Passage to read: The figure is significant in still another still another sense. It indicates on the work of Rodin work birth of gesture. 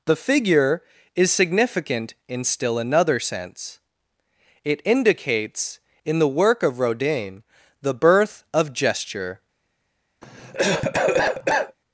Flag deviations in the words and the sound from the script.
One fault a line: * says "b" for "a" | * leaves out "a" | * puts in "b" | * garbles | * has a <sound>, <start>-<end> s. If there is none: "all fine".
* leaves out "still another"
* says "in" for "on"
* says "the" for "work"
* has a cough, 10.2-11.8 s